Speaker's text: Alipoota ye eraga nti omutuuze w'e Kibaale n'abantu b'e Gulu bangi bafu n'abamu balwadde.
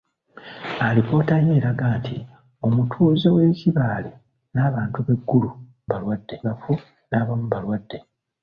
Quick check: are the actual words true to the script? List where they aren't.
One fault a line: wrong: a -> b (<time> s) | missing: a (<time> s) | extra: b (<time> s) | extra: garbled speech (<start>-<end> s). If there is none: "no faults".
wrong: bangi -> balwadde (5.9 s)